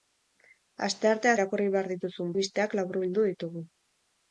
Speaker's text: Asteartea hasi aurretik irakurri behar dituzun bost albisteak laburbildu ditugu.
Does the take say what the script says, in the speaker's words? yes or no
no